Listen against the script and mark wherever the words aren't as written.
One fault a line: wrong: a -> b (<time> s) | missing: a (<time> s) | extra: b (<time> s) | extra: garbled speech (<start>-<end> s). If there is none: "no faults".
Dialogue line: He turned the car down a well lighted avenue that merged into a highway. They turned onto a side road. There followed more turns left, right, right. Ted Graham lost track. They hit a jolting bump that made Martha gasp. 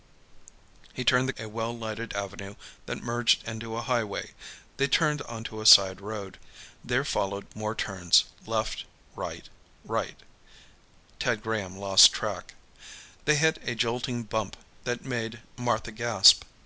missing: car down (1.3 s)